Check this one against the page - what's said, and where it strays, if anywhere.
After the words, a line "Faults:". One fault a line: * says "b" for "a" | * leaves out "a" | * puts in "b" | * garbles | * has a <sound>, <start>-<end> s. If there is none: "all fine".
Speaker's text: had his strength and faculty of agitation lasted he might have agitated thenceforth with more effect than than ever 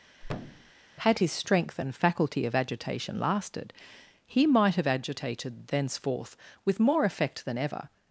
had his strength and faculty of agitation lasted he might have agitated thenceforth with more effect than ever
Faults:
* has a thud, 0.2-0.7 s
* leaves out "than"